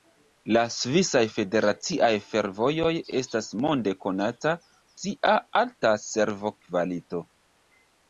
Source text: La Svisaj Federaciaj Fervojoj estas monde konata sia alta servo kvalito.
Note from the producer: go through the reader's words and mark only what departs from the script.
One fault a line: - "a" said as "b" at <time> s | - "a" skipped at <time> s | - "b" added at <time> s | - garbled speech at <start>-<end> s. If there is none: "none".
none